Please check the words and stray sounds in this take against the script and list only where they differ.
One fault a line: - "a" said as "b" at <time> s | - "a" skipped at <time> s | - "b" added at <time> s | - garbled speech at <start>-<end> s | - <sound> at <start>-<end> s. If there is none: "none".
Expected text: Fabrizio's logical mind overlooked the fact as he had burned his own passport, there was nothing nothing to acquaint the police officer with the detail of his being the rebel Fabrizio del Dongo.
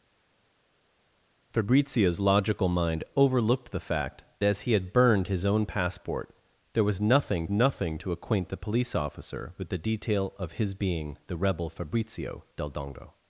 none